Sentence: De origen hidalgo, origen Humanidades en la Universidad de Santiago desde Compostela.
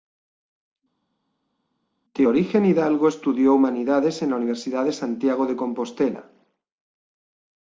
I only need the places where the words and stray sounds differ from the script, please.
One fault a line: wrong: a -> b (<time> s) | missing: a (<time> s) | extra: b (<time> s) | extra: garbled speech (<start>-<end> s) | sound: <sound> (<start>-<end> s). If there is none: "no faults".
wrong: origen -> estudió (3.1 s)
wrong: desde -> de (5.5 s)